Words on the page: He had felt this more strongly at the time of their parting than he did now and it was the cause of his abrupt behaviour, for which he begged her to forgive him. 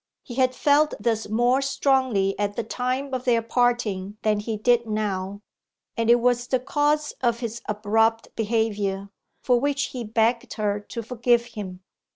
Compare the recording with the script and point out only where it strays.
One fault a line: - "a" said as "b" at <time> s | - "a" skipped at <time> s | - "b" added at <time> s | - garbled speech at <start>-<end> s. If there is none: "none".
none